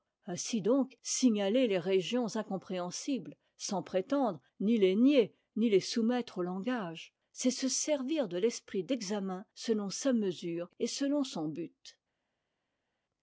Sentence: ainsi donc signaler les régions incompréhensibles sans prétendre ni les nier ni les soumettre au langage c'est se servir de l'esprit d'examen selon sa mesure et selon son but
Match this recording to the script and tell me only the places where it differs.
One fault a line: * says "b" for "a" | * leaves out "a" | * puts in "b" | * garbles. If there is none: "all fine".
all fine